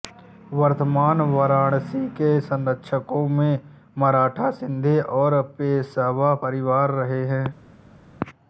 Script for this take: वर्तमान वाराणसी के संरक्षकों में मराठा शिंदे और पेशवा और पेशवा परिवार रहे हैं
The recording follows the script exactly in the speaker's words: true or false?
false